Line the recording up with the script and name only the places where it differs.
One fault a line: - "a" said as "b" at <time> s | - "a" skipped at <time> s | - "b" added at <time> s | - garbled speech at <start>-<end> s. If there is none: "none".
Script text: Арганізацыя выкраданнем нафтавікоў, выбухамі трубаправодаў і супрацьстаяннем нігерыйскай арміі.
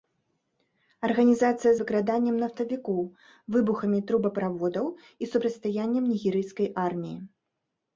none